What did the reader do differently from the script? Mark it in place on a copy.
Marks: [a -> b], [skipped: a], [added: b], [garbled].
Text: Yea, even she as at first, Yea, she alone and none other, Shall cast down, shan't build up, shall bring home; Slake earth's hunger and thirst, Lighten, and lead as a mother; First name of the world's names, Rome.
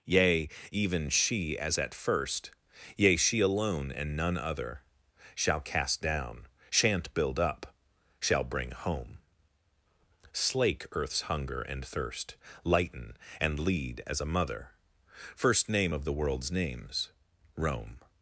Yea, even she as at first, Yea, she alone and none other, Shall cast down, shan't build up, shall bring home; Slake earth's hunger and thirst, Lighten, and lead as a mother; First name of the world's names, Rome.